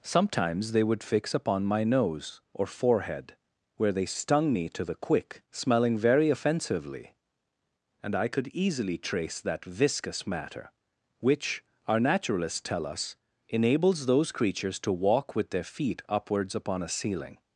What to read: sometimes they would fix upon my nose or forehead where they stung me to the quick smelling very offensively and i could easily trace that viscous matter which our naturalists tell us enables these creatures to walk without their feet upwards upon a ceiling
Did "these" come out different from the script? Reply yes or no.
yes